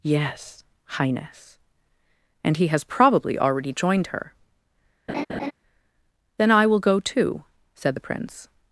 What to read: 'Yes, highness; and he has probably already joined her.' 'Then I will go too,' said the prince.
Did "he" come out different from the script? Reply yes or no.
no